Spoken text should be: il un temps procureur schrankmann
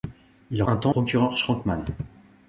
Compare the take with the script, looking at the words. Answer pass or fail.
pass